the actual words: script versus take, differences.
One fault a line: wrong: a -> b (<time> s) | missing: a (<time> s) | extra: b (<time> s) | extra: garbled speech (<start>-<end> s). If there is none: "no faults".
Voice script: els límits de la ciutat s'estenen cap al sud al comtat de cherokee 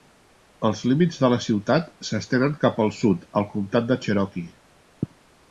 no faults